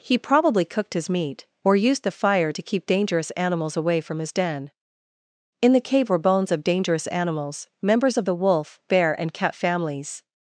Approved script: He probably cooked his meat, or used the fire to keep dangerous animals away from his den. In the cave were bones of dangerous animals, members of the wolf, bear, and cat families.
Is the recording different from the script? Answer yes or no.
no